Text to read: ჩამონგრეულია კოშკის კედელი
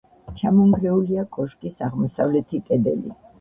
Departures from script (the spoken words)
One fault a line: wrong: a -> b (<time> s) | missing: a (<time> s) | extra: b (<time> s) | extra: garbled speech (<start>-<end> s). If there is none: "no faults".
extra: აღმოსავლეთი (1.9 s)